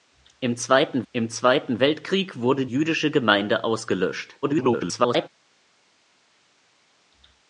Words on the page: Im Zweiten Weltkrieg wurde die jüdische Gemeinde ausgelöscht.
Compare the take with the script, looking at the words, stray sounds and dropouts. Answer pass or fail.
fail